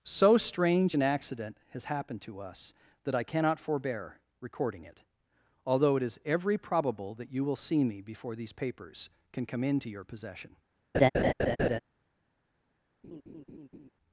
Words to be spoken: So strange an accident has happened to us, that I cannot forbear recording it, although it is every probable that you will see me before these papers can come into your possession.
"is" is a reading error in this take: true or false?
false